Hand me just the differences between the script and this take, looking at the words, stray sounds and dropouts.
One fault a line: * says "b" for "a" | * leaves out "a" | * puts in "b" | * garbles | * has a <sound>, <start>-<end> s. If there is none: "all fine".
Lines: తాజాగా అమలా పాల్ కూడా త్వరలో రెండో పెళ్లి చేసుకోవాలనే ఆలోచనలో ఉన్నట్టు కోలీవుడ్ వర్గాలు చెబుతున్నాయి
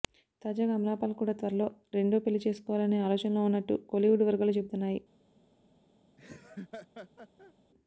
* has a laugh, 6.2-7.5 s